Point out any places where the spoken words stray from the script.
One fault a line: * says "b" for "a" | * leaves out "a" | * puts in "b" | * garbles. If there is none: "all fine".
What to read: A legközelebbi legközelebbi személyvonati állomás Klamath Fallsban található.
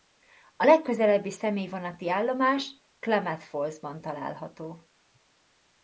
* leaves out "legközelebbi"